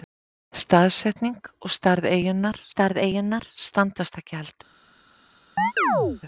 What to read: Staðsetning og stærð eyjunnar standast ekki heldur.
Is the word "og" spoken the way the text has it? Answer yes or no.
yes